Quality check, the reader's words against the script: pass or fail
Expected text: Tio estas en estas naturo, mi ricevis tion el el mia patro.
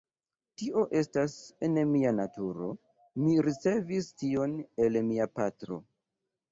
fail